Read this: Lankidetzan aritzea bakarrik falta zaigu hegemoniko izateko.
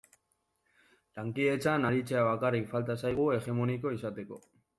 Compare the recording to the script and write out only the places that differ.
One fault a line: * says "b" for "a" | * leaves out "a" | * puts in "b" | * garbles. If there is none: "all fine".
all fine